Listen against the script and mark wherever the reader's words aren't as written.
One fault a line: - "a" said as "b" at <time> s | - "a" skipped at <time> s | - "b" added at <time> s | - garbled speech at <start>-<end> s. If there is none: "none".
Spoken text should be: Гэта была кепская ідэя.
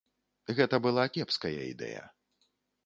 none